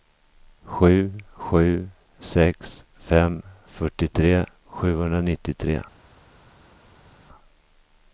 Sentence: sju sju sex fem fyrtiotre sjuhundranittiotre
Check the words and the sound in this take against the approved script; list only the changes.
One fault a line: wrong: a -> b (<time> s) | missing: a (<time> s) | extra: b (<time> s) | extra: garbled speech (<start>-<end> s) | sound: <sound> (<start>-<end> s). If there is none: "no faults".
no faults